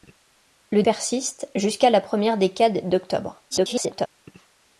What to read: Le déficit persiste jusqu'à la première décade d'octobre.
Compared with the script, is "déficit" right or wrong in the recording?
wrong